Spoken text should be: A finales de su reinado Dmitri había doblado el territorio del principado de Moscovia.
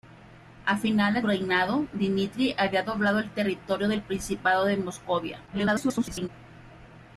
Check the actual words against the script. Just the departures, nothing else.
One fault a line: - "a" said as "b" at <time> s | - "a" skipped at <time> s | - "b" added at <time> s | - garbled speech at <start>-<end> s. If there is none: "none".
- "de su" skipped at 1.2 s
- garbled speech at 5.5-6.3 s